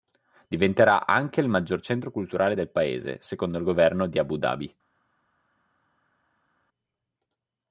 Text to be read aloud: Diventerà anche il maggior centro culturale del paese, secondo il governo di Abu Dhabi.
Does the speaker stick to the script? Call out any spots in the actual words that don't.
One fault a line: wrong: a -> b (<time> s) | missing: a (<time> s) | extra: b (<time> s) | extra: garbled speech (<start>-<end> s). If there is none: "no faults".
no faults